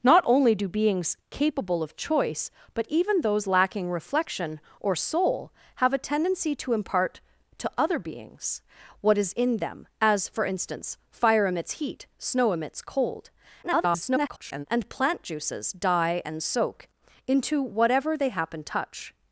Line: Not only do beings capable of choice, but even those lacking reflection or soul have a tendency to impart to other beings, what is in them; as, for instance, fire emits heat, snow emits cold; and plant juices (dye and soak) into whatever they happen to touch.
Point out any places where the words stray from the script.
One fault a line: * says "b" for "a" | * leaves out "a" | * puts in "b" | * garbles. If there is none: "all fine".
* garbles
* leaves out "to"